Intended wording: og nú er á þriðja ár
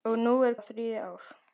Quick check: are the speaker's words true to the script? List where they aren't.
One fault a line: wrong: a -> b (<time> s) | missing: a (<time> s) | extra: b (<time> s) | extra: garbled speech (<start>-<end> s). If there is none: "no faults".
no faults